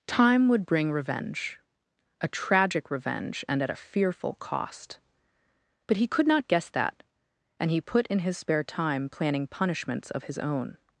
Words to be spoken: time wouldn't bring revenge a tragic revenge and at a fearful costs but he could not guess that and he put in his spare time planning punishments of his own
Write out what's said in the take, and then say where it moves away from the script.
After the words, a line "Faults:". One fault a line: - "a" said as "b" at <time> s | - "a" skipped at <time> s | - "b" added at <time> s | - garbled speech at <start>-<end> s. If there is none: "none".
time would bring revenge a tragic revenge and at a fearful cost but he could not guess that and he put in his spare time planning punishments of his own
Faults:
- "wouldn't" said as "would" at 0.5 s
- "costs" said as "cost" at 4.3 s